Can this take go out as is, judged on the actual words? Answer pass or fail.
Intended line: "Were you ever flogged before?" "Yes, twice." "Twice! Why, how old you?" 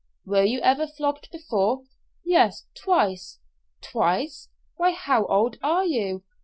fail